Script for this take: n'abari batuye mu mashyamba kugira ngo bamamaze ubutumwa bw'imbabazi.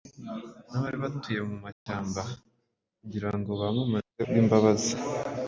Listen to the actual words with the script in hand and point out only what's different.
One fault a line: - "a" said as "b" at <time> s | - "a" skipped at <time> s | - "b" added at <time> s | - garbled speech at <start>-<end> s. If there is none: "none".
- "ubutumwa" skipped at 4.2 s